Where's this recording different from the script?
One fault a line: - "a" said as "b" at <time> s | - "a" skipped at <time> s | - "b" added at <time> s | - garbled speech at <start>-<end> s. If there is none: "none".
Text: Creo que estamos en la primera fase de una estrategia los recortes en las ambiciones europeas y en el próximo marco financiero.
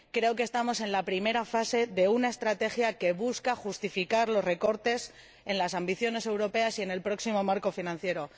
- "que busca justificar" added at 3.0 s